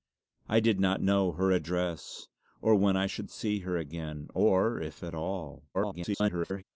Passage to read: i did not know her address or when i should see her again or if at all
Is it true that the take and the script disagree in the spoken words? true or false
true